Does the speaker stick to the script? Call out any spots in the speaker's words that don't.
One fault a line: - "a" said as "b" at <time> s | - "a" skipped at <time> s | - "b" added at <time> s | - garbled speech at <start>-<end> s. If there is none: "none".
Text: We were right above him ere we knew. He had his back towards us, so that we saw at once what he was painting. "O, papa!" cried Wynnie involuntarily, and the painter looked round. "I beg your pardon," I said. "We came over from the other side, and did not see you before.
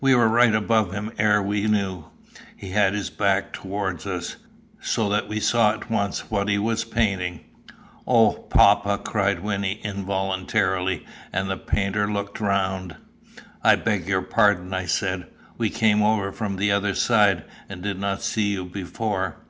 none